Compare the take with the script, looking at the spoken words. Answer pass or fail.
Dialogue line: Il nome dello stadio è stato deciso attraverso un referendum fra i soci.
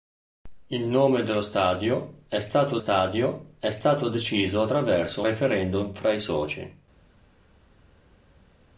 fail